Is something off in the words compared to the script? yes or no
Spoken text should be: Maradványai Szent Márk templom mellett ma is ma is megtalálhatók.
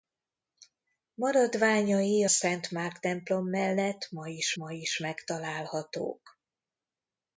no